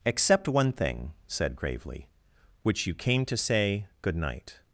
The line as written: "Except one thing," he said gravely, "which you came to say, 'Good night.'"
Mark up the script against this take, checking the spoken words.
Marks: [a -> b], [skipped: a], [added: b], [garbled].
"Except one thing," [skipped: he] said gravely, "which you came to say, 'Good night.'"